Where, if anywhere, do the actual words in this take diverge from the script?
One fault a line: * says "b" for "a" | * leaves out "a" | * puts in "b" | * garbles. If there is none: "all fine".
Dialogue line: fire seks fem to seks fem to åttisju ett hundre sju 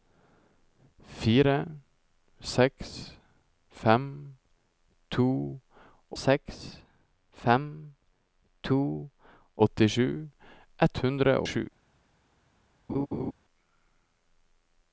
all fine